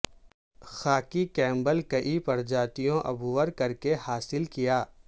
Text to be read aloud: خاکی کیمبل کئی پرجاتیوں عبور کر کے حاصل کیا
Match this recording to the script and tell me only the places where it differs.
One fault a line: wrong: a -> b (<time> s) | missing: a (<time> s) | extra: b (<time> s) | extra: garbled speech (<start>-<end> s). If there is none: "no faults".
no faults